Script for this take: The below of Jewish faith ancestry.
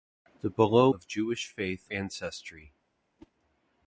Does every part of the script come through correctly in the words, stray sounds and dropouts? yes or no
no